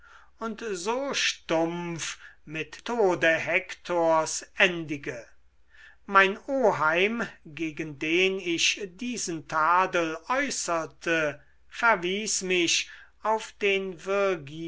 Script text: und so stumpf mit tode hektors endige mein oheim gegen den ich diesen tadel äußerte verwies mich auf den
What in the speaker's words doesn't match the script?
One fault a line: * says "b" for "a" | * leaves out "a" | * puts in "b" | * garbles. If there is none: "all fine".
all fine